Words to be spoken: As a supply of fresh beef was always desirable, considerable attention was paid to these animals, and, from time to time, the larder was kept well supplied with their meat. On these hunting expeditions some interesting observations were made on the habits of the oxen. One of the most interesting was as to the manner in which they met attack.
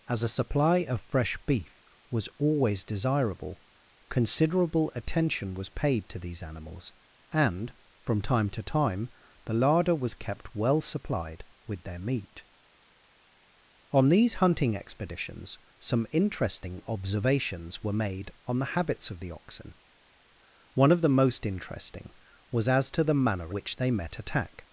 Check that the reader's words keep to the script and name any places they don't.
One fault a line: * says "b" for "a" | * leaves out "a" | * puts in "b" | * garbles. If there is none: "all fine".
* leaves out "in"